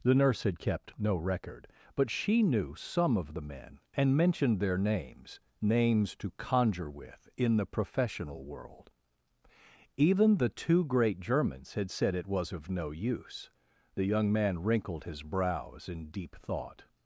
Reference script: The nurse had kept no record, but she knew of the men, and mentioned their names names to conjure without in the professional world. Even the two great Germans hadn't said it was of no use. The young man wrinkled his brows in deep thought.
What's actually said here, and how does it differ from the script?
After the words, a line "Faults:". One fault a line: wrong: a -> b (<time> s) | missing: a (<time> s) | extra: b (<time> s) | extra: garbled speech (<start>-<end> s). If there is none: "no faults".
The nurse had kept no record, but she knew some of the men, and mentioned their names names to conjure with in the professional world. Even the two great Germans had said it was of no use. The young man wrinkled his brows in deep thought.
Faults:
extra: some (2.7 s)
wrong: without -> with (6.9 s)
wrong: hadn't -> had (11.8 s)